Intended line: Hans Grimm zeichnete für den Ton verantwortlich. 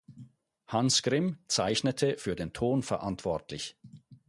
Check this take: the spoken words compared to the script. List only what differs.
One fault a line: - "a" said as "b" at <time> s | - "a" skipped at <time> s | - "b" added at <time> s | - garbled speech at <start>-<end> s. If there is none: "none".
none